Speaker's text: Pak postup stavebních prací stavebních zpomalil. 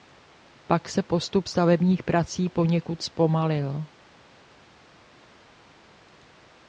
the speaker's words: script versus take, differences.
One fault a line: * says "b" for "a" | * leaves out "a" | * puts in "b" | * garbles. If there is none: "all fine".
* puts in "se"
* says "poněkud" for "stavebních"